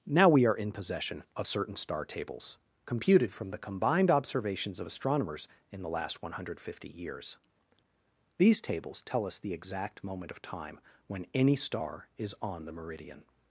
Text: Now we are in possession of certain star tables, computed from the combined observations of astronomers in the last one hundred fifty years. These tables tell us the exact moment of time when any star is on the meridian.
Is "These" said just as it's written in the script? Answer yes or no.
yes